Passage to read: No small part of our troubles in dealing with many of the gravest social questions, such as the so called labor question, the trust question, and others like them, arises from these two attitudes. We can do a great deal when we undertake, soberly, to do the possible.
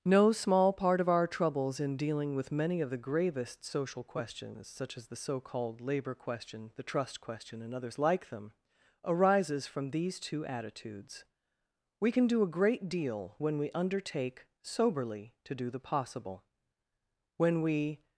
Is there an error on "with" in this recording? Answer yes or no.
no